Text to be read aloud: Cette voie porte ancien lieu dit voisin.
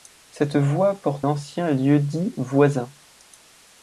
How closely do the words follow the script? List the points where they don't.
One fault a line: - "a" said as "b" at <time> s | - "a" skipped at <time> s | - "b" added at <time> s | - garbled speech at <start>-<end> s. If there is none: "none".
none